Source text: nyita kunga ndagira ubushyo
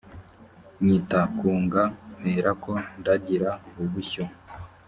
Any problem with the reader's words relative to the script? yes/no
yes